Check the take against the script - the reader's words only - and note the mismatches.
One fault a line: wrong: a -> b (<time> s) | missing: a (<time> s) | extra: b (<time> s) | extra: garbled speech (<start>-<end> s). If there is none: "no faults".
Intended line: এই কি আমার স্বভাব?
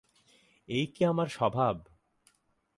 no faults